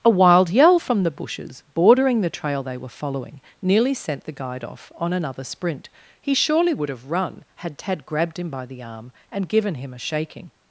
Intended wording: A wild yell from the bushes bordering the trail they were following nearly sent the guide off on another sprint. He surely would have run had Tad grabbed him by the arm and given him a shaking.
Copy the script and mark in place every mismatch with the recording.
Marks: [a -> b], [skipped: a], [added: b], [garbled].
A wild yell from the bushes bordering the trail they were following nearly sent the guide off on another sprint. He surely would have run had Tad grabbed him by the arm and given him a shaking.